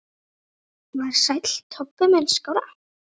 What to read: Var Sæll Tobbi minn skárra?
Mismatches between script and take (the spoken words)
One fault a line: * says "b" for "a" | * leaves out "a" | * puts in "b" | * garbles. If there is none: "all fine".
all fine